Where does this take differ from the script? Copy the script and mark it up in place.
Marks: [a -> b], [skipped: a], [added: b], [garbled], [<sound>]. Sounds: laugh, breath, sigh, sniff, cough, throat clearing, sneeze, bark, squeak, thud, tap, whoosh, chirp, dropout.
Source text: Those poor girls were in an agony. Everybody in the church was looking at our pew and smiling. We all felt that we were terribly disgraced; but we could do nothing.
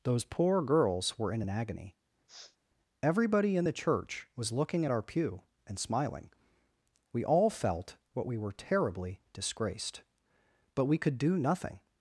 Those poor girls were in an agony. [sniff] Everybody in the church was looking at our pew and smiling. We all felt [that -> what] we were terribly disgraced; but we could do nothing.